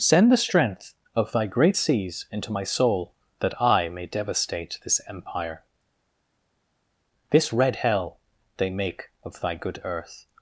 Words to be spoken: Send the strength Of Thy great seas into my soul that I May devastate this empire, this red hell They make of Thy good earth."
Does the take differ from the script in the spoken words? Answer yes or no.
no